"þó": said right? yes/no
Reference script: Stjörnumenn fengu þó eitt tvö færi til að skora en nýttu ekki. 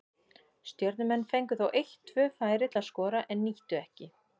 yes